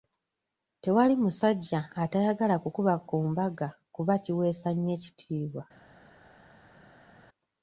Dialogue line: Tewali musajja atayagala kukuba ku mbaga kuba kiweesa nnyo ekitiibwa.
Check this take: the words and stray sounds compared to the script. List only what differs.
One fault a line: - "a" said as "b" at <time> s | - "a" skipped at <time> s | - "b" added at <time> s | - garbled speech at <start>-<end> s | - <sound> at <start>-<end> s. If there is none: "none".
none